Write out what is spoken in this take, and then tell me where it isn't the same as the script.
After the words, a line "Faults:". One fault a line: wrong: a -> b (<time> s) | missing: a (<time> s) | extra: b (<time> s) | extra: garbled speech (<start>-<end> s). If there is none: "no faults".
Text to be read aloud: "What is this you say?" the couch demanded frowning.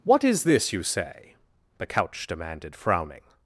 "What is this you say?" the couch demanded frowning.
Faults:
no faults